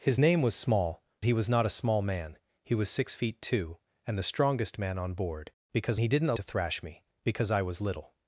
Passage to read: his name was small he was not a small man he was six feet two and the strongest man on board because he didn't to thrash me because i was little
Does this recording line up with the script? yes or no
yes